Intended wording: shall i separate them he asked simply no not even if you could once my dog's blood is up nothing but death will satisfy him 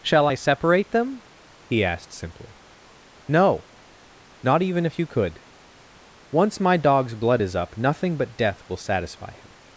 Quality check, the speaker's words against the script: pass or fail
pass